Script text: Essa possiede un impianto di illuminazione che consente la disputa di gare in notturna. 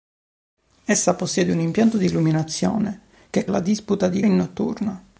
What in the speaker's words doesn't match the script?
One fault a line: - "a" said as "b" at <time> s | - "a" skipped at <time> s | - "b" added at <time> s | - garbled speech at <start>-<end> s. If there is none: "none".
- "consente" skipped at 3.5 s
- "gare" skipped at 4.2 s